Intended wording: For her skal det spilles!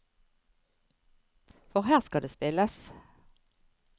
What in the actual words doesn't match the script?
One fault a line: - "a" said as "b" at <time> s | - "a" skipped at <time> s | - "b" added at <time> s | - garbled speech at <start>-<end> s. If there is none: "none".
none